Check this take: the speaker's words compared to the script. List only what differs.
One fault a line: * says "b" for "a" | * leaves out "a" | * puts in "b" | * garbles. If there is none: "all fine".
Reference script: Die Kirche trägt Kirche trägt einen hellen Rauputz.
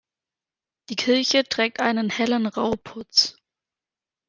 * leaves out "Kirche trägt"